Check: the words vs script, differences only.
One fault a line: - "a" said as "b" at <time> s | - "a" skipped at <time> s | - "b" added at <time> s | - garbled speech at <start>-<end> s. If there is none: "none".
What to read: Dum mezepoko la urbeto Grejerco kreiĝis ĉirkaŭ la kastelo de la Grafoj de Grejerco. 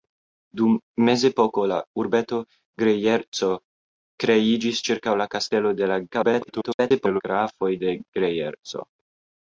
- garbled speech at 6.1-7.2 s